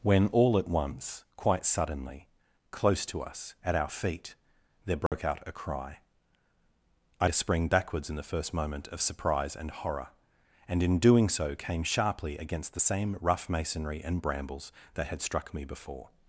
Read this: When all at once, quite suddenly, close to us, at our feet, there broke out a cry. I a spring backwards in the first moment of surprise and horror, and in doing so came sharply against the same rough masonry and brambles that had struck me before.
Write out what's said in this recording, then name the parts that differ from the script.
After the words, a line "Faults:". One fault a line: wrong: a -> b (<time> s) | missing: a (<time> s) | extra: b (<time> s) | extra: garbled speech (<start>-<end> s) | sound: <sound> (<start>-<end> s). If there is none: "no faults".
When all at once, quite suddenly, close to us, at our feet, there broke out a cry. I a spring backwards in the first moment of surprise and horror, and in doing so came sharply against the same rough masonry and brambles that had struck me before.
Faults:
sound: dropout (5.1-5.1 s)